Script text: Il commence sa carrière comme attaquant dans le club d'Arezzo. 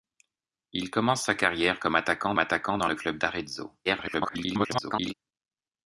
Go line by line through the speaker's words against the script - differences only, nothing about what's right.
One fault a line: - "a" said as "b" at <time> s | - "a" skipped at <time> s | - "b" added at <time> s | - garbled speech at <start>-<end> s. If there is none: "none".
- "attaquant" added at 2.4 s
- garbled speech at 3.8-5.1 s